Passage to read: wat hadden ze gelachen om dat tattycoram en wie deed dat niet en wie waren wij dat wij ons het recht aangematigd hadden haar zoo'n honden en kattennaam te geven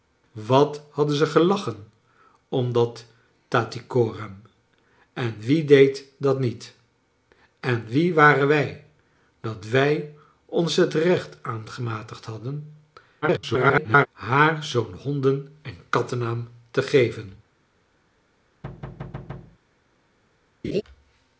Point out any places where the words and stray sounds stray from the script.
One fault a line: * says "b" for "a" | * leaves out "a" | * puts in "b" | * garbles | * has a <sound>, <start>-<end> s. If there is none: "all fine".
* garbles
* has a thud, 18.6-19.6 s
* has a laugh, 20.6-20.8 s